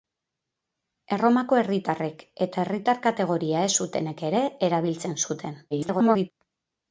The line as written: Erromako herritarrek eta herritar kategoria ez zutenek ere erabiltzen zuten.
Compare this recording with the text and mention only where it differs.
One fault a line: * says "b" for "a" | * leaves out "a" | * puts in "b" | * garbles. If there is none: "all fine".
* garbles